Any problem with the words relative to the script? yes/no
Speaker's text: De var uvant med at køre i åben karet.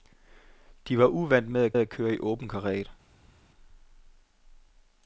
yes